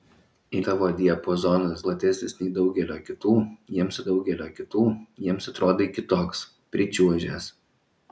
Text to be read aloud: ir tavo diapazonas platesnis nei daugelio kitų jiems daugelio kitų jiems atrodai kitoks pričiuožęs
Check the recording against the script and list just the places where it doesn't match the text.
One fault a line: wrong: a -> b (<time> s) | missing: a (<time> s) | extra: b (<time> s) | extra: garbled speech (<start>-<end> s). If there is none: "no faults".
no faults